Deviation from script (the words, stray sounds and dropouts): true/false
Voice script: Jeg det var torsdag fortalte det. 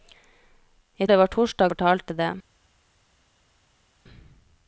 false